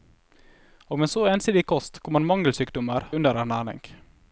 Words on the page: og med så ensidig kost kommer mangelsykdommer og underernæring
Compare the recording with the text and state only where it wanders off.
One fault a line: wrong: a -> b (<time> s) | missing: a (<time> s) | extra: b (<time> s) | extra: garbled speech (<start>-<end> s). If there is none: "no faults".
missing: og (3.1 s)